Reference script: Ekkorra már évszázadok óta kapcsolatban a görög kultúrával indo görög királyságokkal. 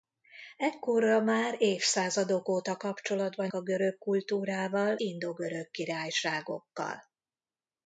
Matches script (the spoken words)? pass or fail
pass